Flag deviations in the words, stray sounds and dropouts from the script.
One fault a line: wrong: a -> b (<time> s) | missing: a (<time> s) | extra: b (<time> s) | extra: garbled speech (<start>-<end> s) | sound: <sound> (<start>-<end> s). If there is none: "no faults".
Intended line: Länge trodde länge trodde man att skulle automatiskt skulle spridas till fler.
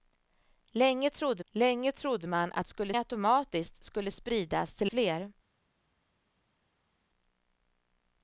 no faults